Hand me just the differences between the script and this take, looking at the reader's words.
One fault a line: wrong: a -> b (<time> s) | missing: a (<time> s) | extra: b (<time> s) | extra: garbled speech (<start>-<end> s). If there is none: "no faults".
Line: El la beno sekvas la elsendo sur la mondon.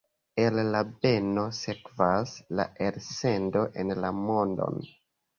wrong: sur -> en (3.8 s)